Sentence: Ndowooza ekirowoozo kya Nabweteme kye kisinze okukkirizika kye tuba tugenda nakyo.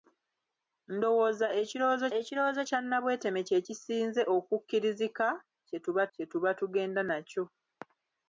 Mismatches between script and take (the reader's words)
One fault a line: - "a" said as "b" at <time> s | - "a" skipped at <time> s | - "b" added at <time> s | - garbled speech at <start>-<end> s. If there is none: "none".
- "ekirowoozo" added at 2.2 s
- "kye tuba" added at 6.1 s